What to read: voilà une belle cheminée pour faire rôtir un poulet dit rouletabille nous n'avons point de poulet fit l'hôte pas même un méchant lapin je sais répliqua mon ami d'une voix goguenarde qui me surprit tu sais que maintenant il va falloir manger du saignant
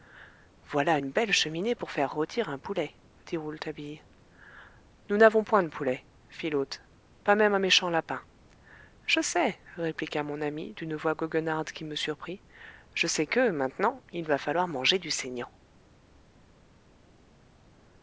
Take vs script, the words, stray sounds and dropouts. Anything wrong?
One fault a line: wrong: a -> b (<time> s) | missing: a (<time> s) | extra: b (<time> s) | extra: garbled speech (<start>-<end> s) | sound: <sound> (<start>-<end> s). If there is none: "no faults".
wrong: tu -> je (12.9 s)